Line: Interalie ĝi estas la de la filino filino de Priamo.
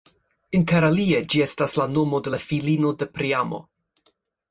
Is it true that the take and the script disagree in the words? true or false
true